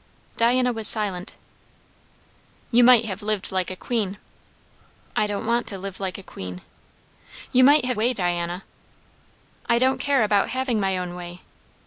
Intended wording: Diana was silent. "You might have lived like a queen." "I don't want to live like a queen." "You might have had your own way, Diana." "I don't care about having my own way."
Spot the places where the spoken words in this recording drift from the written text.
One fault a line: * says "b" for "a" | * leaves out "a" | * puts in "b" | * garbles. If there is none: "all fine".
* leaves out "had your own"